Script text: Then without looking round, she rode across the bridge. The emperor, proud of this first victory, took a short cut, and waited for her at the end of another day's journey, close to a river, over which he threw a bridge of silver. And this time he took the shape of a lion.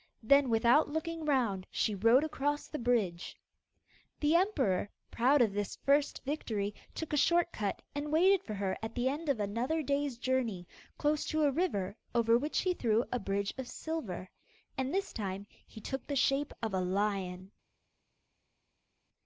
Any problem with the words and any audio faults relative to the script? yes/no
no